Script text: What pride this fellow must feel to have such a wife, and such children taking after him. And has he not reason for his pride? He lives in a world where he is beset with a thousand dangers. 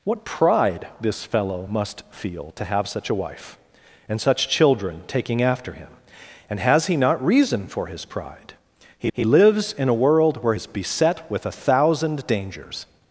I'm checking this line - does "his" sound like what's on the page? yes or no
yes